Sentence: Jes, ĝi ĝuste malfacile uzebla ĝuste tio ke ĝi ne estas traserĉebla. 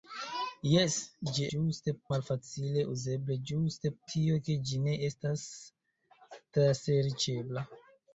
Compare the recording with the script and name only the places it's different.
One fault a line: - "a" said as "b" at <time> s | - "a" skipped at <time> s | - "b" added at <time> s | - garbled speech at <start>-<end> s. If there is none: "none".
none